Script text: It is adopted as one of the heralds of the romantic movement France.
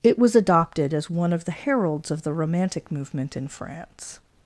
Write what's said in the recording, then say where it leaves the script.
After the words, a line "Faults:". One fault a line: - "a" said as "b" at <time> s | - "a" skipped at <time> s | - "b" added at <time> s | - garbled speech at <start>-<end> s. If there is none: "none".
It was adopted as one of the heralds of the romantic movement in France.
Faults:
- "is" said as "was" at 0.2 s
- "in" added at 3.4 s